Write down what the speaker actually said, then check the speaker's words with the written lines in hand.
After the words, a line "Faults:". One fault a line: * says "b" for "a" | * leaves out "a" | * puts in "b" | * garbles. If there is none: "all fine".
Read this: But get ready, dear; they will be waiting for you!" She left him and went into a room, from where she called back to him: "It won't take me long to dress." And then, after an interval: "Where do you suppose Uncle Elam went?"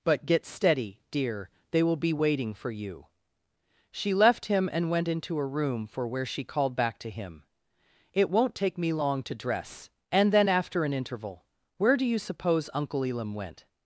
But get steady, dear; they will be waiting for you!" She left him and went into a room, for where she called back to him: "It won't take me long to dress." And then, after an interval: "Where do you suppose Uncle Elam went?"
Faults:
* says "steady" for "ready"
* says "for" for "from"